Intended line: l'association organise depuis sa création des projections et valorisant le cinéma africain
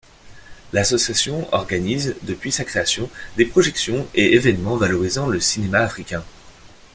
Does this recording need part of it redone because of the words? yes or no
yes